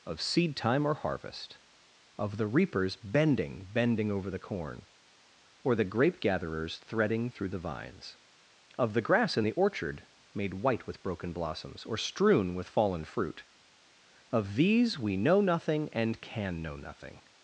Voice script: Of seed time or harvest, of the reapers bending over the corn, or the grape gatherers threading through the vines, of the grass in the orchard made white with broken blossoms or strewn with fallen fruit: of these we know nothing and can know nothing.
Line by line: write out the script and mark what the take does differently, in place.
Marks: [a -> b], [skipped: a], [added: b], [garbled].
Of seed time or harvest, of the reapers bending [added: bending] over the corn, or the grape gatherers threading through the vines, of the grass in the orchard made white with broken blossoms or strewn with fallen fruit: of these we know nothing and can know nothing.